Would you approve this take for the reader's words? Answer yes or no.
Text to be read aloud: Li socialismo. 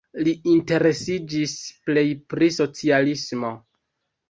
no